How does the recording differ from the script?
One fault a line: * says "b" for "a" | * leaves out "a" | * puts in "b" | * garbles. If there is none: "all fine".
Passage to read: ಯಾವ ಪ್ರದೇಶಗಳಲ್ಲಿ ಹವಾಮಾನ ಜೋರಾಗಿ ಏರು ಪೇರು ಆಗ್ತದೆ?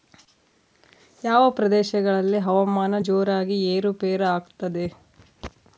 all fine